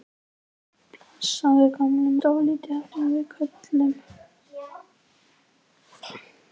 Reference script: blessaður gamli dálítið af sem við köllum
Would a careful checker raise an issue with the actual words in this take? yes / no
no